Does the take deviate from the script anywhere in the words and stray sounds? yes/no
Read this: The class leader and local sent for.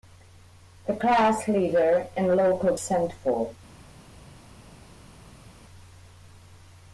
no